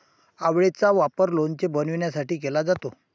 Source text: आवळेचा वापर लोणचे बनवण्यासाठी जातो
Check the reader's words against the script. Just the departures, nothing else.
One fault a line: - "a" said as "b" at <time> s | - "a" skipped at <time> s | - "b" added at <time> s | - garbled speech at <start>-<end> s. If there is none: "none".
- "केला" added at 2.4 s